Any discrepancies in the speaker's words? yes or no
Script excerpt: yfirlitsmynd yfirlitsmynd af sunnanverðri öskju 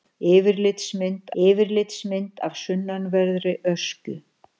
no